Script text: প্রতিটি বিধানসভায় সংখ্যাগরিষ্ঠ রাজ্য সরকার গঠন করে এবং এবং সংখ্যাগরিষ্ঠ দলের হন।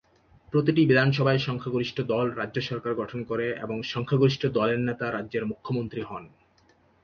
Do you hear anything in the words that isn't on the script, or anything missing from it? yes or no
yes